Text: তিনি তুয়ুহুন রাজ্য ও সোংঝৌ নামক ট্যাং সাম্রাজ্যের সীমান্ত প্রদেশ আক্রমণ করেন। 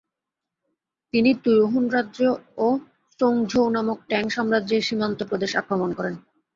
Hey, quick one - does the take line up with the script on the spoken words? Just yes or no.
yes